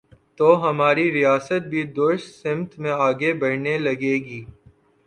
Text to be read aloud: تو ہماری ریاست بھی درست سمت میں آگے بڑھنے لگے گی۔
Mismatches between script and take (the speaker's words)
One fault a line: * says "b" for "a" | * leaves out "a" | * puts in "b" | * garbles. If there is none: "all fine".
all fine